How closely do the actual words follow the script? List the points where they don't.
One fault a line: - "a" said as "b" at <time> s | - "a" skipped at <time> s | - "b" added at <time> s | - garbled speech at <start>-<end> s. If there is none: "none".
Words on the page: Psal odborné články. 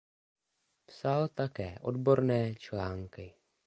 - "také" added at 1.3 s